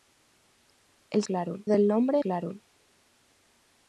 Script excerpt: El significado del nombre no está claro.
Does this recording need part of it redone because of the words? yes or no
yes